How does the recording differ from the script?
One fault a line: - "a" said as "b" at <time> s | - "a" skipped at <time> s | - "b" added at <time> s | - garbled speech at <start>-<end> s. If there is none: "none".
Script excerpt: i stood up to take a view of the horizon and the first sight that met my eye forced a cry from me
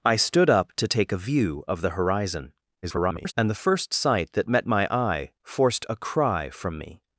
- garbled speech at 2.8-3.3 s